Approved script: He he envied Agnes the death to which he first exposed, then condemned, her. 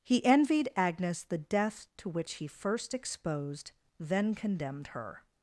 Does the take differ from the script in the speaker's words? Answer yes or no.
yes